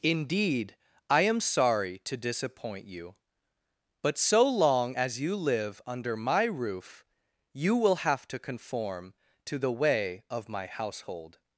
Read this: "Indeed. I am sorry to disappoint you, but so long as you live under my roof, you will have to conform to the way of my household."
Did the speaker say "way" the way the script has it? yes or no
yes